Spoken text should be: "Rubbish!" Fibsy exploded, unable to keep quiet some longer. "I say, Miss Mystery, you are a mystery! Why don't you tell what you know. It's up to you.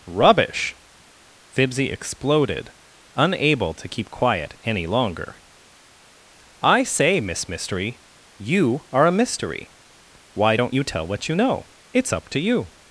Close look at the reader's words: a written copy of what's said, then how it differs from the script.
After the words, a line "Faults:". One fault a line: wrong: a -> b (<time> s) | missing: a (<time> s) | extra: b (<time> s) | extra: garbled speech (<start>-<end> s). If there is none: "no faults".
"Rubbish!" Fibsy exploded, unable to keep quiet any longer. "I say, Miss Mystery, you are a mystery! Why don't you tell what you know. It's up to you.
Faults:
wrong: some -> any (4.6 s)